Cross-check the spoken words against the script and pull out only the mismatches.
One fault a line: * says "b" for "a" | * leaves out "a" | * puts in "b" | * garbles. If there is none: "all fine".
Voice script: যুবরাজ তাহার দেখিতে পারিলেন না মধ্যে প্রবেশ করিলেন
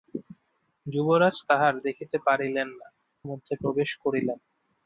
all fine